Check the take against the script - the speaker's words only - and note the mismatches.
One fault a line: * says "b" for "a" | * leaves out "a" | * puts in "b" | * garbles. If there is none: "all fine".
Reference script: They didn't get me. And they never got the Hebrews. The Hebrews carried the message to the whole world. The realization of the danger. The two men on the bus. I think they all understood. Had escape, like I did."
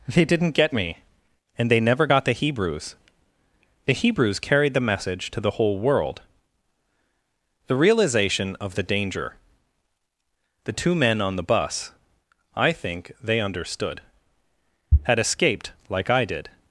* leaves out "all"
* says "escaped" for "escape"